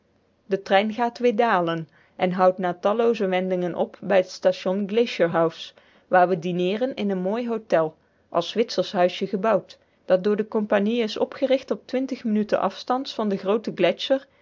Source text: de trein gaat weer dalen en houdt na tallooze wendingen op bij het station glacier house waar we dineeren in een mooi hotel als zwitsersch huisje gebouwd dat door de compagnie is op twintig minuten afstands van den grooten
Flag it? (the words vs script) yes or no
yes